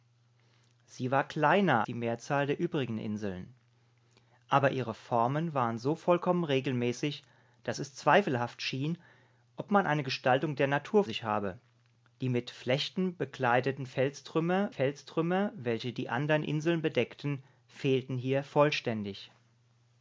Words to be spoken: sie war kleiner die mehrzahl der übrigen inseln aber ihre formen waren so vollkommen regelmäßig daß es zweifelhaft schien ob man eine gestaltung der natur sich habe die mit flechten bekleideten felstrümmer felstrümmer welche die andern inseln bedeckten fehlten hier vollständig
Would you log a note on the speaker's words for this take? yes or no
no